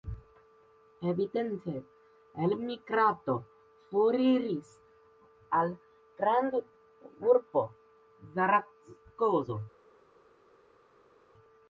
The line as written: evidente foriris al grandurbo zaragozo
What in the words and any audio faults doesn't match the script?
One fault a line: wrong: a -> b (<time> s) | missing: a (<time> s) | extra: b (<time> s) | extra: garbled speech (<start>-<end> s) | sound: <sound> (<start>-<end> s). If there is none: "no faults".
extra: elmigrado (2.4 s)